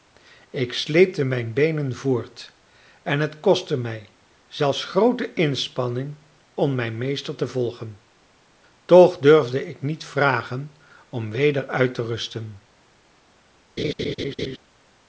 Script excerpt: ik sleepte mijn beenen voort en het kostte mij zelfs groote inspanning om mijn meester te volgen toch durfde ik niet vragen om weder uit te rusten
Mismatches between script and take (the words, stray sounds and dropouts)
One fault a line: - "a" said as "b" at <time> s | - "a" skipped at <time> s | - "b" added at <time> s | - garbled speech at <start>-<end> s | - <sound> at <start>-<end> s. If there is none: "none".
- laugh at 13.8-14.6 s